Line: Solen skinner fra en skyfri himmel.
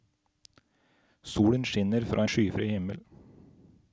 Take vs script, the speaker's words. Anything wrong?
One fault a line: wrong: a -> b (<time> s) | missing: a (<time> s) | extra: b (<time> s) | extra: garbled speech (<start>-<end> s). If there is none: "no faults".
no faults